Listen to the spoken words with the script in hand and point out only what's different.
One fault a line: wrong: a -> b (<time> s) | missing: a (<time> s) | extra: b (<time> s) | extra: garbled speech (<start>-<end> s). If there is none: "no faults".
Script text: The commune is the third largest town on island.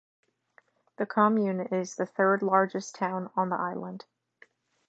extra: the (3.5 s)